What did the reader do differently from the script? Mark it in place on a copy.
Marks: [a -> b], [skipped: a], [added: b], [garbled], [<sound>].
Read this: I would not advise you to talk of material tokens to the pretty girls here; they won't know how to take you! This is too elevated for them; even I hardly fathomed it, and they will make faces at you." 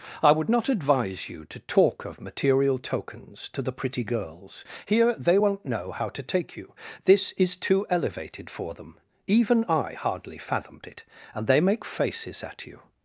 I would not advise you to talk of material tokens to the pretty girls here; they won't know how to take you! This is too elevated for them; even I hardly fathomed it, and they [skipped: will] make faces at you."